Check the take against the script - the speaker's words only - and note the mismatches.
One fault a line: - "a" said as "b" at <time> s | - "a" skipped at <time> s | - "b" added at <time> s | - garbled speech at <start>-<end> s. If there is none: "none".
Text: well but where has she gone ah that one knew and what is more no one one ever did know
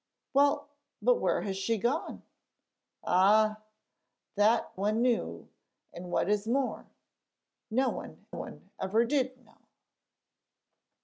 none